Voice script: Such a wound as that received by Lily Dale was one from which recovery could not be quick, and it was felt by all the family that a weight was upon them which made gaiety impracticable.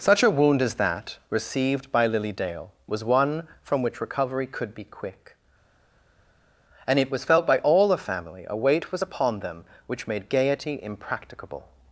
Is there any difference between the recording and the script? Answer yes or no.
yes